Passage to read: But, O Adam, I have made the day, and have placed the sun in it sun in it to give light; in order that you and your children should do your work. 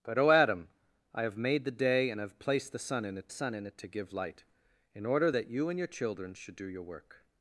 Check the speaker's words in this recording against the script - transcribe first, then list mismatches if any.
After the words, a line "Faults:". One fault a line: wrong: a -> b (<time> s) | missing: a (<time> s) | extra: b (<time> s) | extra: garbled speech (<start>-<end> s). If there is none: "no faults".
But, O Adam, I have made the day, and have placed the sun in it sun in it to give light; in order that you and your children should do your work.
Faults:
no faults